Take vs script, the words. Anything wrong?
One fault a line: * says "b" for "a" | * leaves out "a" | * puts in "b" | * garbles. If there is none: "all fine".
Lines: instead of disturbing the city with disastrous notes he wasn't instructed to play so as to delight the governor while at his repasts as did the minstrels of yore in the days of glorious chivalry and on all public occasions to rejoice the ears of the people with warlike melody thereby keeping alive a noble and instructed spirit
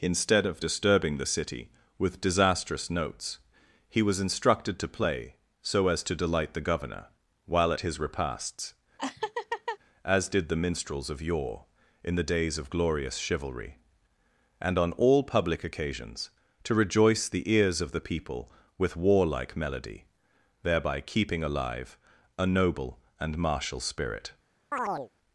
* says "was" for "wasn't"
* says "martial" for "instructed"